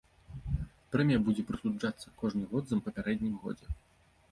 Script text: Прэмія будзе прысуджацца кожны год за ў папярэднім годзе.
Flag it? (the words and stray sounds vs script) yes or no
no